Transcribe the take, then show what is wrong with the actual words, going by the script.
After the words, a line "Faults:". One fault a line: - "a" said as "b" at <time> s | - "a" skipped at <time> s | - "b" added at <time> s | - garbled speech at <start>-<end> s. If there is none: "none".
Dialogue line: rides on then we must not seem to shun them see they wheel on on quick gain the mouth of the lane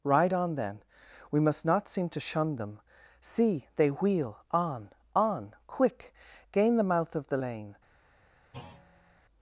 ride on then we must not seem to shun them see they wheel on on quick gain the mouth of the lane
Faults:
- "rides" said as "ride" at 0.0 s